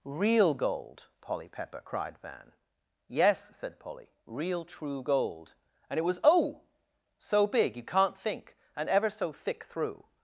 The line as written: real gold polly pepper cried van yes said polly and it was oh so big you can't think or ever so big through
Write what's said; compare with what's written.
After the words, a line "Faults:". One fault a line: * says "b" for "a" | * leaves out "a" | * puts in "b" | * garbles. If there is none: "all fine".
real gold polly pepper cried van yes said polly real true gold and it was oh so big you can't think and ever so thick through
Faults:
* puts in "real true gold"
* says "and" for "or"
* says "thick" for "big"